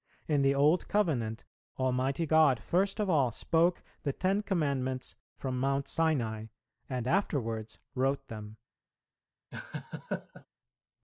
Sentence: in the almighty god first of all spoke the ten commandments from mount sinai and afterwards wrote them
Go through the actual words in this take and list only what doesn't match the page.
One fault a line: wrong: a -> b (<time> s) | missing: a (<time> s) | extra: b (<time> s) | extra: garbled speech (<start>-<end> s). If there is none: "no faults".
extra: old covenant (0.6 s)